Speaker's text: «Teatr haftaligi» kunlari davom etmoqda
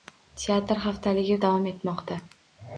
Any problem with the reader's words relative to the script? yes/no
yes